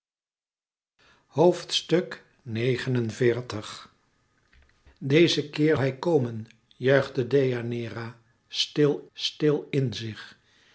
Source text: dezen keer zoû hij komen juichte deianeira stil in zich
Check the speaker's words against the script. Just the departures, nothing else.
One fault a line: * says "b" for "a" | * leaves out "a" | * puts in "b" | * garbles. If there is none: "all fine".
* leaves out "zoû"
* puts in "stil"